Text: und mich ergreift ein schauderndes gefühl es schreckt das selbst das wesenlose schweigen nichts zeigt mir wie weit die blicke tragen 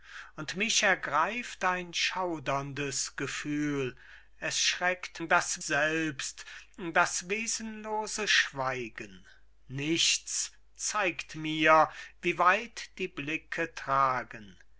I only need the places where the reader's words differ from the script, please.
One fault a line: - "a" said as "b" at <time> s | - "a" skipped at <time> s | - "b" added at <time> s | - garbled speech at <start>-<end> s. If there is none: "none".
none